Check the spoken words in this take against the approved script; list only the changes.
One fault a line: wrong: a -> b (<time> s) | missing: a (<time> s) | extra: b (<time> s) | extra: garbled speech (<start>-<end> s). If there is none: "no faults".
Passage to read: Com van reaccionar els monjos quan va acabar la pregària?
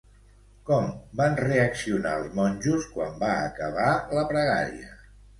no faults